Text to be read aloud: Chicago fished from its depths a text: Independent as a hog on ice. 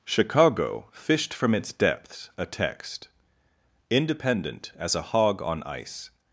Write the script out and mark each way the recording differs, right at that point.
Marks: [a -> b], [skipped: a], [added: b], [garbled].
Chicago fished from its depths a text: Independent as a hog on ice.